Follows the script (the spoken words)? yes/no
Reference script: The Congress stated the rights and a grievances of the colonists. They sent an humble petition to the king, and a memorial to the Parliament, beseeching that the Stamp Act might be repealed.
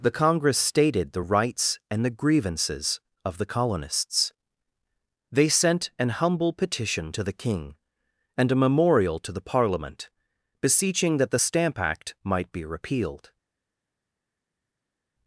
no